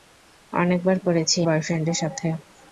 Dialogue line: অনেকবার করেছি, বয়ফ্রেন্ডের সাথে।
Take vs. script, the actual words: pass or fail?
pass